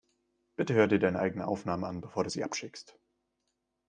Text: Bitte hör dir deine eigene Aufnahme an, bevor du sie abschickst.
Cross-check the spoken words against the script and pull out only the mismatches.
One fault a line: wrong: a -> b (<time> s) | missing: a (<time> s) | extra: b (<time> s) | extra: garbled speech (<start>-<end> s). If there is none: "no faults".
no faults